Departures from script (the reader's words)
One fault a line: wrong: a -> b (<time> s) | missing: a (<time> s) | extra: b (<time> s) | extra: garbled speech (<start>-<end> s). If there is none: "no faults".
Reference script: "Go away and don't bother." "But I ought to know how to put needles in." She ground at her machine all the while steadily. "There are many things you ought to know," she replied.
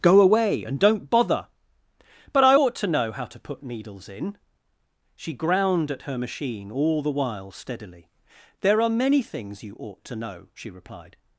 no faults